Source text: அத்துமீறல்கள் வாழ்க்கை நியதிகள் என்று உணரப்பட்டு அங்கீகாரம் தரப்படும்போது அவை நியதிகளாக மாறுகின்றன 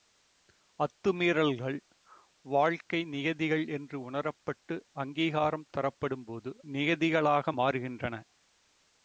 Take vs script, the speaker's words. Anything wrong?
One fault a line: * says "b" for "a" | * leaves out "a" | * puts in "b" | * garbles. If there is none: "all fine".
* leaves out "அவை"